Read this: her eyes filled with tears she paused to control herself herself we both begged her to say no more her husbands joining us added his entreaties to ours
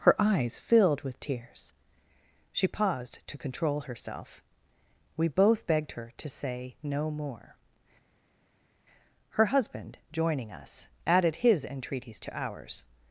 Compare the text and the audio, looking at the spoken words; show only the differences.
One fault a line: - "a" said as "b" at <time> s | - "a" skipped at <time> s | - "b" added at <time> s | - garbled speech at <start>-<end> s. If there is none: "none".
- "herself" skipped at 4.4 s
- "husbands" said as "husband" at 9.5 s